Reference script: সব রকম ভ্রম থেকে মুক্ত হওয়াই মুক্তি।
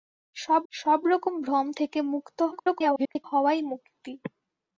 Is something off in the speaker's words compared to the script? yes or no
yes